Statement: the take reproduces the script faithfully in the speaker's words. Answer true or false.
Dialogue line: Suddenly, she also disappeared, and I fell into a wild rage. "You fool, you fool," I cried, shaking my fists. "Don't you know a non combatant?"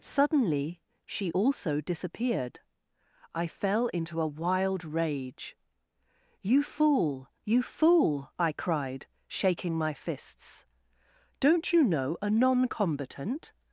false